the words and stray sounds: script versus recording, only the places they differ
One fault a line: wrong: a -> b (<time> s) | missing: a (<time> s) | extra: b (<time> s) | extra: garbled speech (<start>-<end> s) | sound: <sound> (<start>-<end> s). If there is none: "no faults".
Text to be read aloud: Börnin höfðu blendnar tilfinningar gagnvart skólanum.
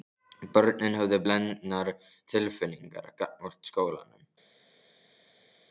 no faults